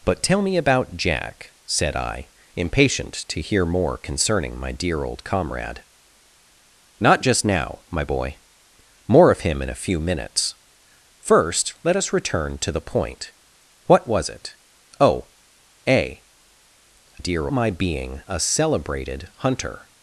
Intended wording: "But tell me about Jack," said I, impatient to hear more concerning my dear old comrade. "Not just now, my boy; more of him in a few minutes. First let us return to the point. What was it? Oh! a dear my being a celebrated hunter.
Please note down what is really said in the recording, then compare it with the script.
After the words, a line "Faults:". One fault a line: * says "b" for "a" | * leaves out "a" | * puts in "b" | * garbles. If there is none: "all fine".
"But tell me about Jack," said I, impatient to hear more concerning my dear old comrade. "Not just now, my boy; more of him in a few minutes. First let us return to the point. What was it? Oh! a dear my being a celebrated hunter.
Faults:
all fine